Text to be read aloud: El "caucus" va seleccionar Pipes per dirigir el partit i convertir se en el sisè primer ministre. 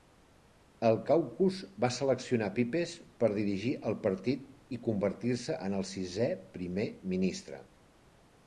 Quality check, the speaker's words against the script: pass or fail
pass